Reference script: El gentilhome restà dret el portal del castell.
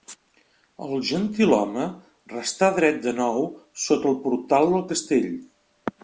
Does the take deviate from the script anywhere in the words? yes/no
yes